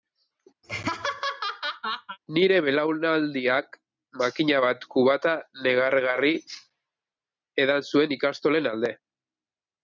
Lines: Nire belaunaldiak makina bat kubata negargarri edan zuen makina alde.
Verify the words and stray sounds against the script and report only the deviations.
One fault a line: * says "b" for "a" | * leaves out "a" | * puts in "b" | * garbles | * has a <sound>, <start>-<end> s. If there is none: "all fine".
* has a laugh, 0.6-2.2 s
* says "ikastolen" for "makina"